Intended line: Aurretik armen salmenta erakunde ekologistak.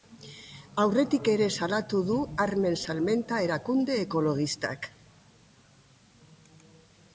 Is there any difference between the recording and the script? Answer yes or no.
yes